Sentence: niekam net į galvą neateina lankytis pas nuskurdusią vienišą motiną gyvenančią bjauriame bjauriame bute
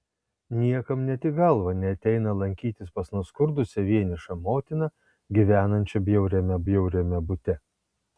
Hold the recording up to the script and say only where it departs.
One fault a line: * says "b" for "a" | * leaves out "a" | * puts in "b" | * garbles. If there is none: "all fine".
all fine